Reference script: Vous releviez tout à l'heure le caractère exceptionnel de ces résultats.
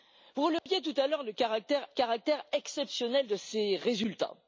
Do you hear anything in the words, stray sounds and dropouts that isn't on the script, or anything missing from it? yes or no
yes